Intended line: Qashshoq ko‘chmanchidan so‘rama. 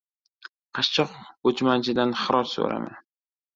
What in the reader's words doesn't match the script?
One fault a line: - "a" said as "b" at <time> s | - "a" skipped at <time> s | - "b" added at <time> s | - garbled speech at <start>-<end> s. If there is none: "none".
- "xiroj" added at 2.2 s